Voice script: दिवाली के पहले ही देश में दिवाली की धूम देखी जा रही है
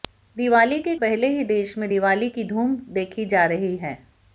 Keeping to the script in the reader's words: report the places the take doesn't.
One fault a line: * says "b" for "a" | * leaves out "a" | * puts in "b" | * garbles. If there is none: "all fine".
all fine